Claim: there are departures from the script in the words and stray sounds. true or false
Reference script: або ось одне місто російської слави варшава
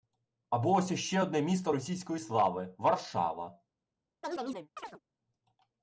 true